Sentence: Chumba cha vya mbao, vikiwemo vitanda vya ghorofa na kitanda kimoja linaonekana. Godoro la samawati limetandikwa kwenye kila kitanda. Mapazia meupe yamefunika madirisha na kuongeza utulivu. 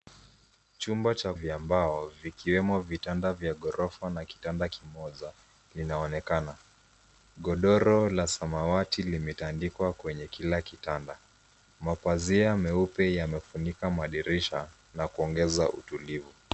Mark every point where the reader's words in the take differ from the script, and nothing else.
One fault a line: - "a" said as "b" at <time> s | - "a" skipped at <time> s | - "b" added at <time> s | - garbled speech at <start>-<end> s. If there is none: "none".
none